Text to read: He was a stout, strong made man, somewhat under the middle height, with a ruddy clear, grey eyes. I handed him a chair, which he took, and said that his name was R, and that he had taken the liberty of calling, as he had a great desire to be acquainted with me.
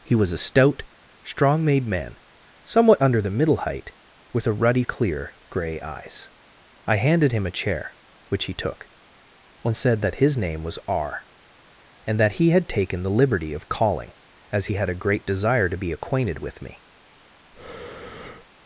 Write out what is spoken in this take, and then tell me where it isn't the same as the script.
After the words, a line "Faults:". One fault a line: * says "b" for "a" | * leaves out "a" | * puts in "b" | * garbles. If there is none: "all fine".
He was a stout, strong made man, somewhat under the middle height, with a ruddy clear, grey eyes. I handed him a chair, which he took, and said that his name was R, and that he had taken the liberty of calling, as he had a great desire to be acquainted with me.
Faults:
all fine